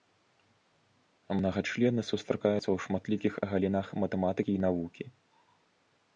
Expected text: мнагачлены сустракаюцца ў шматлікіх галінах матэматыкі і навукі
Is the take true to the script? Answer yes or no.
yes